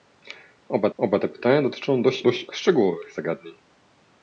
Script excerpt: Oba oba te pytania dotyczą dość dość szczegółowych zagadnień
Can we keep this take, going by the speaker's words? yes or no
yes